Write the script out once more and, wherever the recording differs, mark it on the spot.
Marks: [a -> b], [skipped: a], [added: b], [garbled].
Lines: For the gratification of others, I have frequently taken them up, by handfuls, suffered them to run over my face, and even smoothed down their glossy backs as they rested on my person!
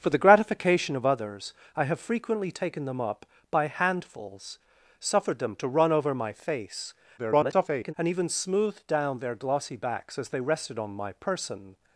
For the gratification of others, I have frequently taken them up, by handfuls, suffered them to run over my face, [garbled] and even smoothed down their glossy backs as they rested on my person!